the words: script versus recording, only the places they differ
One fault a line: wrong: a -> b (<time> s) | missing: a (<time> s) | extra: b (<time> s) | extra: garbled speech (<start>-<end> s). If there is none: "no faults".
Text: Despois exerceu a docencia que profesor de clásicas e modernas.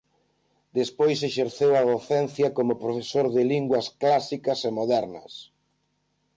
wrong: que -> como (2.6 s)
extra: linguas (3.5 s)